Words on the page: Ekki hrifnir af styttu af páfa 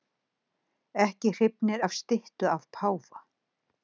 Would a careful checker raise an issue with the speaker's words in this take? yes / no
no